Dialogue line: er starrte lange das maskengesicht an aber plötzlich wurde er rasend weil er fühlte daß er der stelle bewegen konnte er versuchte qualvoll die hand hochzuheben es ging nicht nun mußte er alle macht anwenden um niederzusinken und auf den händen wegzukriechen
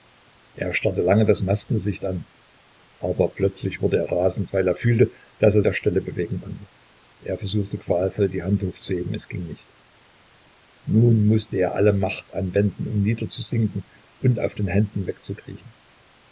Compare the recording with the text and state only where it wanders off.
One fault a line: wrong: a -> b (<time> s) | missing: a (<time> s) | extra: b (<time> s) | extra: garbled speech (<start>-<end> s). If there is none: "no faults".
no faults